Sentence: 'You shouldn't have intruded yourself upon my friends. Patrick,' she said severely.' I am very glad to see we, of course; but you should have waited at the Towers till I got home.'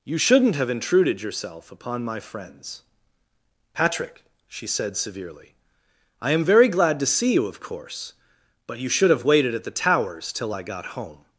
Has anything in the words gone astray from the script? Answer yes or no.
yes